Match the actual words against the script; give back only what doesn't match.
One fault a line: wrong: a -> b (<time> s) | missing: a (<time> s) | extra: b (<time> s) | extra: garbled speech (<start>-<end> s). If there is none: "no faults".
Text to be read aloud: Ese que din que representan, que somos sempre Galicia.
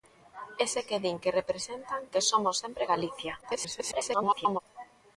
extra: garbled speech (3.4-4.6 s)